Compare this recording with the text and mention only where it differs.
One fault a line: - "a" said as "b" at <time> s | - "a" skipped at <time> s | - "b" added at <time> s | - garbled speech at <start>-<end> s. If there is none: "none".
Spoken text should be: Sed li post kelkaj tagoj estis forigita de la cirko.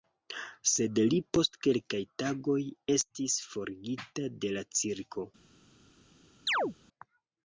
none